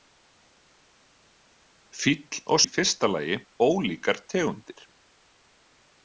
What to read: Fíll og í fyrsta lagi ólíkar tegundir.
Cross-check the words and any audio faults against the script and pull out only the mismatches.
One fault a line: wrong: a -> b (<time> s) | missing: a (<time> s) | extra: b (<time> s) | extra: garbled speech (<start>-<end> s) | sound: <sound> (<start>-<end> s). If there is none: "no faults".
no faults